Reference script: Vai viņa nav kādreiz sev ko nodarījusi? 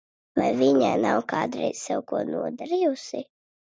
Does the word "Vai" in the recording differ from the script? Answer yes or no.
no